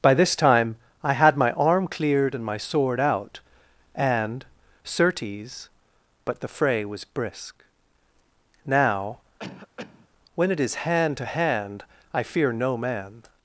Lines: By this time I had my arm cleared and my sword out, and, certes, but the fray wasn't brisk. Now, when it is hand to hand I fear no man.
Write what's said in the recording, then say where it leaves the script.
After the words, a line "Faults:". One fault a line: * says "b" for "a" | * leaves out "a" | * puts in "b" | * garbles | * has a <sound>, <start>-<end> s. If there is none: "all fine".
By this time I had my arm cleared and my sword out, and, certes, but the fray was brisk. Now, when it is hand to hand I fear no man.
Faults:
* says "was" for "wasn't"
* has a cough, 9.4-10.1 s